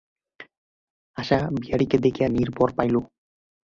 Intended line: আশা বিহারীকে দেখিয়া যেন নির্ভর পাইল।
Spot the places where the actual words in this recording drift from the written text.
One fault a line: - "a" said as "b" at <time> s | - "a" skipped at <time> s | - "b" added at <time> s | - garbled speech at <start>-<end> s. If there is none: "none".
- "যেন" skipped at 2.3 s